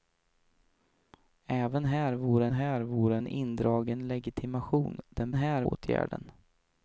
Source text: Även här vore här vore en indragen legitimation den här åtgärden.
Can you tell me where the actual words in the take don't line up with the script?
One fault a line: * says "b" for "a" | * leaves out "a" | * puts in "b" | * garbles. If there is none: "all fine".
all fine